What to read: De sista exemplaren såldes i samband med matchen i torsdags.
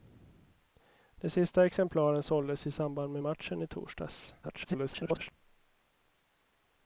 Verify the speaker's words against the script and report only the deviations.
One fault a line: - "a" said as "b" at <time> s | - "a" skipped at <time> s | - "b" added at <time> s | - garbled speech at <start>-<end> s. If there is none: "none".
- garbled speech at 4.4-5.3 s